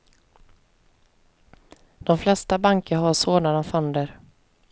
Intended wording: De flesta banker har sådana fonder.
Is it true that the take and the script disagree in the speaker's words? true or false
false